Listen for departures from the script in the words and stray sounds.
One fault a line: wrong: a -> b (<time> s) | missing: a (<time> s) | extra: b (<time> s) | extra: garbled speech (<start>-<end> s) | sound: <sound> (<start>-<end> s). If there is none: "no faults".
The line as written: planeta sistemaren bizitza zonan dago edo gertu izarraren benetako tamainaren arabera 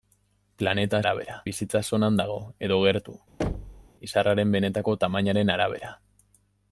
wrong: sistemaren -> arabera (1.0 s)
sound: thud (3.4-3.9 s)